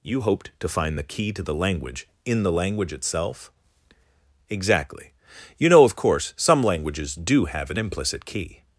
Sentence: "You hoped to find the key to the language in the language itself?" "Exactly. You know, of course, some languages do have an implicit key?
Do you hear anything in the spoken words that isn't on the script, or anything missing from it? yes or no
no